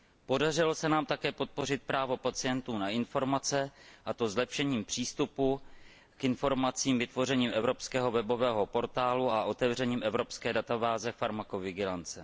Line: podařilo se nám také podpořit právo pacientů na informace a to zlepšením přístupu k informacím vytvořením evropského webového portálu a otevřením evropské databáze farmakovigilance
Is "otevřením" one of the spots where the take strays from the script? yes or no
no